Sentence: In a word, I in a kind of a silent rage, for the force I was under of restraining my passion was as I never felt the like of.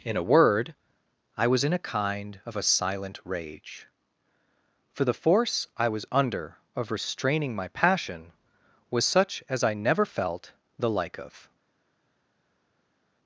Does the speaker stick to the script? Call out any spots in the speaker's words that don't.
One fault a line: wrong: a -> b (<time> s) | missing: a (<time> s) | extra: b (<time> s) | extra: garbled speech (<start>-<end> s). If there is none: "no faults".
extra: was (1.4 s)
extra: such (9.0 s)